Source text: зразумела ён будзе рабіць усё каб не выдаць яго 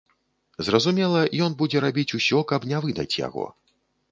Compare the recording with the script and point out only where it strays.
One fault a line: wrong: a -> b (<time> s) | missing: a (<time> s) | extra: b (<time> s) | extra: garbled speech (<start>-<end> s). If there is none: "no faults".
no faults